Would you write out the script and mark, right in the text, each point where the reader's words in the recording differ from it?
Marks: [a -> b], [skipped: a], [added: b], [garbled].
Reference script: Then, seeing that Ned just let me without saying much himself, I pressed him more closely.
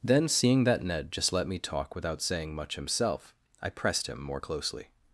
Then, seeing that Ned just let me [added: talk] without saying much himself, I pressed him more closely.